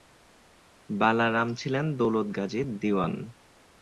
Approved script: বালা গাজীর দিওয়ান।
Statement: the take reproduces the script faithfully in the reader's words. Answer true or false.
false